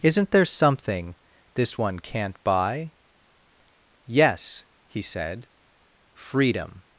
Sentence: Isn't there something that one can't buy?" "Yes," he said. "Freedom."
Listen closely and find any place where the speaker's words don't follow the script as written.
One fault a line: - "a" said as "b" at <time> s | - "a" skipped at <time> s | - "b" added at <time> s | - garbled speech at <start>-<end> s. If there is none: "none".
- "that" said as "this" at 1.5 s